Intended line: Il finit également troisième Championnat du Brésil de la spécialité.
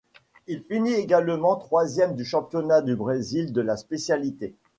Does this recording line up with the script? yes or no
no